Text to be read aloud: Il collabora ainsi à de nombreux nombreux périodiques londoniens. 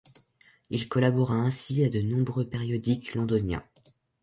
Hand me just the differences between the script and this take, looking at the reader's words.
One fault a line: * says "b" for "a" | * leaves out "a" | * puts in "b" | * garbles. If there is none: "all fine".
* leaves out "nombreux"